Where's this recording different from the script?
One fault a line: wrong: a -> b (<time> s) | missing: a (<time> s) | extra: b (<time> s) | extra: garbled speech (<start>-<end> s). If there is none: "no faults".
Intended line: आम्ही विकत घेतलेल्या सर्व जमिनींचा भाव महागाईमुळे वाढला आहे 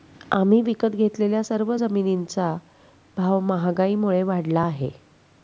no faults